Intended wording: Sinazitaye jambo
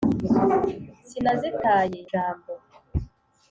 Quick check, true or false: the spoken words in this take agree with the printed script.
true